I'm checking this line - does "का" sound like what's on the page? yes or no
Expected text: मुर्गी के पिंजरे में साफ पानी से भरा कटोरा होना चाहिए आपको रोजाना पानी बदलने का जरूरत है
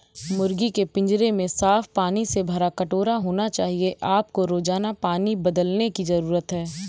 no